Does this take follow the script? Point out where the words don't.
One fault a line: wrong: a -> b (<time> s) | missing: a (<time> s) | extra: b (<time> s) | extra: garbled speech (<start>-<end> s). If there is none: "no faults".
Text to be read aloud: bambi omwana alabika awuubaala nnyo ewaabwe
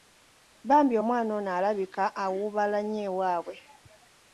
extra: ono (1.4 s)